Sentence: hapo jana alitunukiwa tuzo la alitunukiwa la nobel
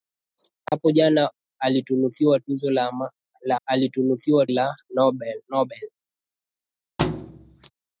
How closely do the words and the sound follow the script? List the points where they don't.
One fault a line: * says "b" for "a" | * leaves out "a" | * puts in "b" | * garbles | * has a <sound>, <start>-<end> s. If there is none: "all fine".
* has a dropout, 0.7-0.7 s
* has a thud, 7.0-7.7 s